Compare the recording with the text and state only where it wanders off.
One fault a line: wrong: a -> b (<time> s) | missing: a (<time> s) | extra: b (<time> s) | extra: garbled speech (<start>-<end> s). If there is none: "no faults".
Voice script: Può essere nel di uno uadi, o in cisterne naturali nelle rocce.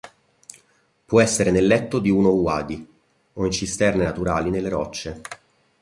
extra: letto (1.7 s)